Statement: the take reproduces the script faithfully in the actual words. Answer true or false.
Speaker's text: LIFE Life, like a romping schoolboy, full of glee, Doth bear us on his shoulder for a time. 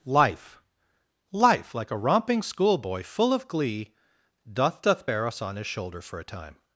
false